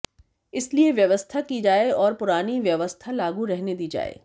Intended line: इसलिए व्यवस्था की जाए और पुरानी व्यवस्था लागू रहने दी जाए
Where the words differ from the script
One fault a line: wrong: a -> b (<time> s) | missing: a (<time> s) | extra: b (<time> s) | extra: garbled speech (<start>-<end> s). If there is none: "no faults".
no faults